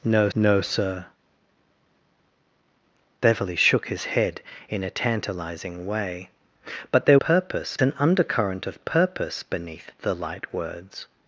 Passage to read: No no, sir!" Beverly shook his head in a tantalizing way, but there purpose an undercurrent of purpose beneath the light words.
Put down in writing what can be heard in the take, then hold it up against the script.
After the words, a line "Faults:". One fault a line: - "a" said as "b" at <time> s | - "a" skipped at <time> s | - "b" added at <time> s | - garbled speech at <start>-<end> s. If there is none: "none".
No no, sir!" Beverly shook his head in a tantalizing way, but there purpose an undercurrent of purpose beneath the light words.
Faults:
none